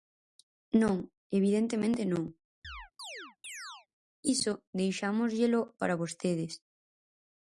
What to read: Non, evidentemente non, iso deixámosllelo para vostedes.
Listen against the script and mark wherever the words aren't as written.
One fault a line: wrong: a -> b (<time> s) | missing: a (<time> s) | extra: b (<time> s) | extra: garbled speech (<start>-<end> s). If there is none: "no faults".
no faults